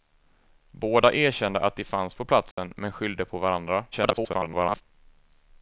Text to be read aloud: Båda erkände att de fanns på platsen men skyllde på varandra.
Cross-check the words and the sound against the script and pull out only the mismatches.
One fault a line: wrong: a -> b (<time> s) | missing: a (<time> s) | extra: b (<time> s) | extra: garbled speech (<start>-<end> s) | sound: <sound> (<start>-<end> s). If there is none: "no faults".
sound: dropout (2.5-2.6 s)
extra: garbled speech (3.9-4.8 s)